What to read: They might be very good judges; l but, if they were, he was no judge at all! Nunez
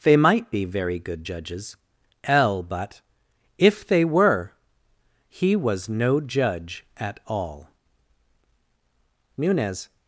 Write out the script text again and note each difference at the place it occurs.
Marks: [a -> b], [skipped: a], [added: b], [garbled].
They might be very good judges; l but, if they were, he was no judge at all! Nunez